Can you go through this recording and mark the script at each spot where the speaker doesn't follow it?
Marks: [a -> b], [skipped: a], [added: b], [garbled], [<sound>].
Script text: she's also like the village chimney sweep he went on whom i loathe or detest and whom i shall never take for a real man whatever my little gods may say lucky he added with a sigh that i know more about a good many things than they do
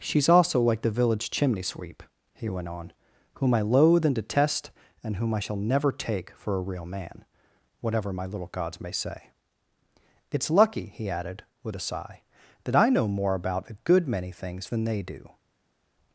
she's also like the village chimney sweep he went on whom i loathe [or -> and] detest and whom i shall never take for a real man whatever my little gods may say [added: it's] lucky he added with a sigh that i know more about a good many things than they do